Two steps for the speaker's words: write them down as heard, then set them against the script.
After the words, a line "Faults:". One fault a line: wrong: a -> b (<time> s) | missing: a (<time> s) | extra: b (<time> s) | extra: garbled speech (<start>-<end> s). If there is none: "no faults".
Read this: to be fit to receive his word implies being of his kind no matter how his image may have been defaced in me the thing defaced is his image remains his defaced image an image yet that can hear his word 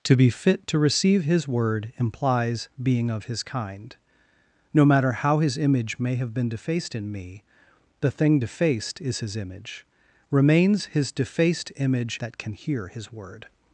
to be fit to receive his word implies being of his kind no matter how his image may have been defaced in me the thing defaced is his image remains his defaced image that can hear his word
Faults:
missing: an image yet (12.2 s)